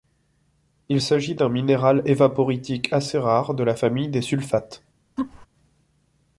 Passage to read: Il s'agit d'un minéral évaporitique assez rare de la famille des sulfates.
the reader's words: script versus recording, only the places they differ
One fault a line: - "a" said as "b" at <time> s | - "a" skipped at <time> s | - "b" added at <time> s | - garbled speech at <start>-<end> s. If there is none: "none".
none